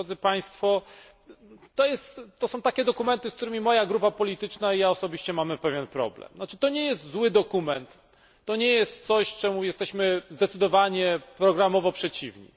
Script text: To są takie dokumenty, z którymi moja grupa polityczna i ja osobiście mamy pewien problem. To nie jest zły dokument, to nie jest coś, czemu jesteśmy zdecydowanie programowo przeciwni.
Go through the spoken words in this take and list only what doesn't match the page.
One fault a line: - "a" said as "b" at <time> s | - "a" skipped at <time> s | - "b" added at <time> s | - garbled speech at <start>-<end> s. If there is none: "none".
none